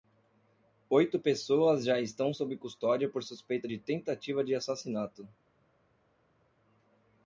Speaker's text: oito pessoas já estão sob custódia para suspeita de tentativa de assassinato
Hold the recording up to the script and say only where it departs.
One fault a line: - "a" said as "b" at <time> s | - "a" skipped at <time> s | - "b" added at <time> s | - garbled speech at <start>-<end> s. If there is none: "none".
- "para" said as "por" at 3.1 s